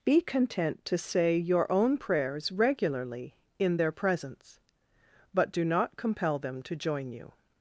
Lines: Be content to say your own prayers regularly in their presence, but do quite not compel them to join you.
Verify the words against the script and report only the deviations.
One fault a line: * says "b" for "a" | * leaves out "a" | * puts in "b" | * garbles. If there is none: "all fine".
* leaves out "quite"